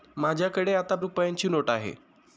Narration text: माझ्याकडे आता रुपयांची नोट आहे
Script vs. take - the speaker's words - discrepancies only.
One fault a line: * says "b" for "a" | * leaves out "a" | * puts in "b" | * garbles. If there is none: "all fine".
all fine